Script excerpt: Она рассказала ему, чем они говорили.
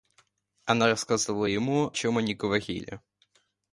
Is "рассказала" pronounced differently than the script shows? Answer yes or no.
no